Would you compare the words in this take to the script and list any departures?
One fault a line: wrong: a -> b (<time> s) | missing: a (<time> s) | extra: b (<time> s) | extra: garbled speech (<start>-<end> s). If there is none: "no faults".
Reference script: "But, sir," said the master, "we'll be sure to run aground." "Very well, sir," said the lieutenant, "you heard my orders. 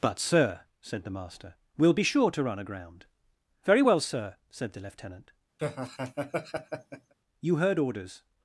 missing: my (7.8 s)